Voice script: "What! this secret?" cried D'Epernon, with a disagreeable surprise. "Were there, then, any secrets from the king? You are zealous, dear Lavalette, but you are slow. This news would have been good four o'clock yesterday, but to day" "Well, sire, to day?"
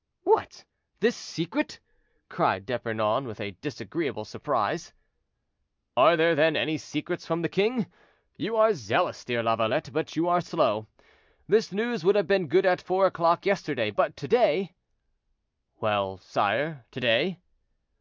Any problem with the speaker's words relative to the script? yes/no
yes